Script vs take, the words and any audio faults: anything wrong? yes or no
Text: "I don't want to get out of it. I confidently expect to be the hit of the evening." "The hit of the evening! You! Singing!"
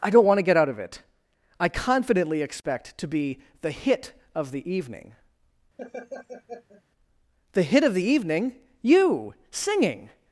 yes